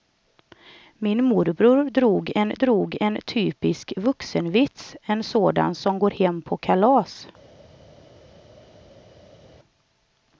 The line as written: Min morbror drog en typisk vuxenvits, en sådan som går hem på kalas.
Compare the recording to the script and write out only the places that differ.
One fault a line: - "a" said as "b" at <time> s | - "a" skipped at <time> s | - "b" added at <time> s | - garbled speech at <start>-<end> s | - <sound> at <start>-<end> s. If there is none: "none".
- "drog en" added at 2.5 s